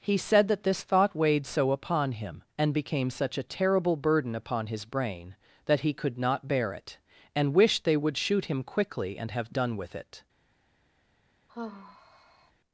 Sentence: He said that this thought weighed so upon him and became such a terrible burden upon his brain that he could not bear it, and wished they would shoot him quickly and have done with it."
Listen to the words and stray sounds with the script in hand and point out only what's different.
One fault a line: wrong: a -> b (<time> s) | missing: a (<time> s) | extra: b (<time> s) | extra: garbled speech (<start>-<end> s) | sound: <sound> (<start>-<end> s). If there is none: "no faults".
sound: sigh (11.5-12.5 s)